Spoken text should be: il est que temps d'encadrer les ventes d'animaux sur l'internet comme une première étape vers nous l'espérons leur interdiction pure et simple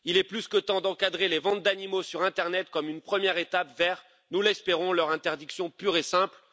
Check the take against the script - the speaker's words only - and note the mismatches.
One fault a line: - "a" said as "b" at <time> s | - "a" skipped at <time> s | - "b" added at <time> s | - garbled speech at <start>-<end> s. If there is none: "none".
- "plus" added at 0.2 s